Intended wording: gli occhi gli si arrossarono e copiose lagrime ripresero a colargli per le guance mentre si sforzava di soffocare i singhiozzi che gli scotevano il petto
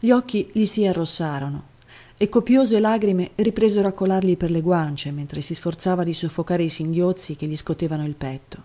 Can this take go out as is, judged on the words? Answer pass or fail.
pass